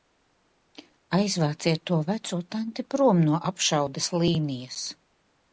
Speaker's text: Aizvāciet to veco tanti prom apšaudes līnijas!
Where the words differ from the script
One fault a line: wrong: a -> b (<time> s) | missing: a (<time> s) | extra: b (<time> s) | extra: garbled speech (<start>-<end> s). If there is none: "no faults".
extra: no (3.3 s)